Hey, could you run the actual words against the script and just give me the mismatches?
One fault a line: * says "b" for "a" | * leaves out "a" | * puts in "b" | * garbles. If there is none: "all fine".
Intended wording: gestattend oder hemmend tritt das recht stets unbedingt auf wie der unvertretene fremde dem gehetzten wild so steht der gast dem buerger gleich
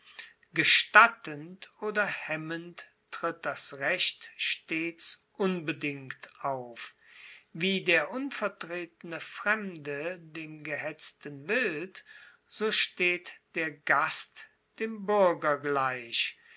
all fine